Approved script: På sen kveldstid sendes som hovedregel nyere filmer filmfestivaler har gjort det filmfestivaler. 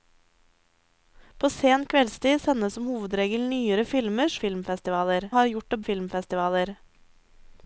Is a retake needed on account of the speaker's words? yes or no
no